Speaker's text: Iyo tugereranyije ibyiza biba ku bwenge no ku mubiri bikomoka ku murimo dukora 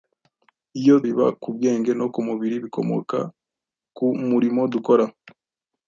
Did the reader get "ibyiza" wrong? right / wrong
wrong